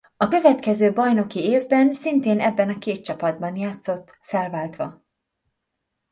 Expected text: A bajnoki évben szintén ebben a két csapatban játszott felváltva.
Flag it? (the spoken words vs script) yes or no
yes